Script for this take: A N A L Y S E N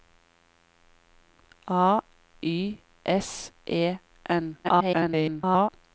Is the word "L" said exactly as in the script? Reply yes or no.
no